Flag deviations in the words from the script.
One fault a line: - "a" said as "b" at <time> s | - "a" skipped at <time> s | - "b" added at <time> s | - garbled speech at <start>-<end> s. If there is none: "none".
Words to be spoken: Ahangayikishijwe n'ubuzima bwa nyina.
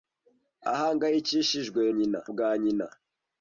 - "n'ubuzima" said as "nyina" at 2.0 s